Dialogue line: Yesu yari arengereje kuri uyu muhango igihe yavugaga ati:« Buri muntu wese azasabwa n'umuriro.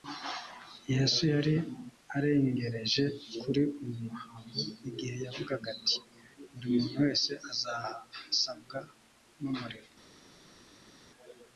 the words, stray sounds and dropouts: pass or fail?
pass